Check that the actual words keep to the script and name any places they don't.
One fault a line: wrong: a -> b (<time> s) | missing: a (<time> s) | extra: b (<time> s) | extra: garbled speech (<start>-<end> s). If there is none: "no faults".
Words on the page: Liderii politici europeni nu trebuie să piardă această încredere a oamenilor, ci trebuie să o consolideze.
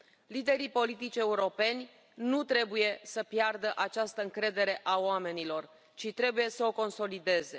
no faults